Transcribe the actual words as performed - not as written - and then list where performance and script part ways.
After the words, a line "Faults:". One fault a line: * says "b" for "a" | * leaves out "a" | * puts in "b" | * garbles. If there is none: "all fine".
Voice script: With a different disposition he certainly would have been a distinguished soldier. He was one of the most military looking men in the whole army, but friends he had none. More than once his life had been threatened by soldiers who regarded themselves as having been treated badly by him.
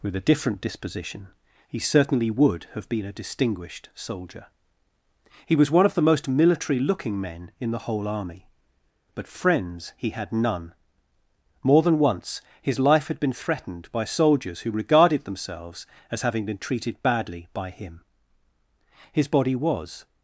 With a different disposition he certainly would have been a distinguished soldier. He was one of the most military looking men in the whole army, but friends he had none. More than once his life had been threatened by soldiers who regarded themselves as having been treated badly by him. His body was
Faults:
* puts in "His body was"